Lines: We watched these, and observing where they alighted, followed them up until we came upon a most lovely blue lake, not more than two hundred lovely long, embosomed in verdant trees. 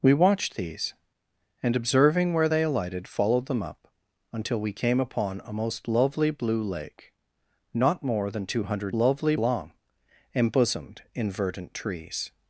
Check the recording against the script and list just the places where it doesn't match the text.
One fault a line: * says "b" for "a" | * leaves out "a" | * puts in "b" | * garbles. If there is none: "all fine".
all fine